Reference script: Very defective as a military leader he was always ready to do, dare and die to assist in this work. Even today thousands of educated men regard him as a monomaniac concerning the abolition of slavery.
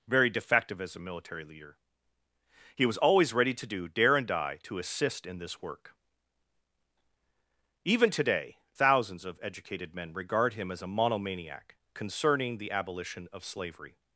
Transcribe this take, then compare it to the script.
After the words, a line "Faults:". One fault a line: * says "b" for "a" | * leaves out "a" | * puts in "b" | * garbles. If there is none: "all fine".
Very defective as a military leader he was always ready to do, dare and die to assist in this work. Even today thousands of educated men regard him as a monomaniac concerning the abolition of slavery.
Faults:
all fine